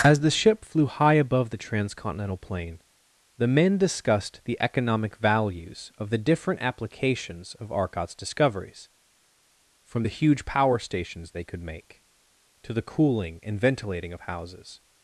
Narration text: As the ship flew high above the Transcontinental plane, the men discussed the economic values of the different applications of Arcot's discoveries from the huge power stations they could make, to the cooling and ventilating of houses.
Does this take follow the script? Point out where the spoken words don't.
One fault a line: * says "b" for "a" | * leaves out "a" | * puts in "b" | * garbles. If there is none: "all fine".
all fine